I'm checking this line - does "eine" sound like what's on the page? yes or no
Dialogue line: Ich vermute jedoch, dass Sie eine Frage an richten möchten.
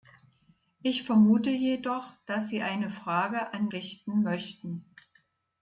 yes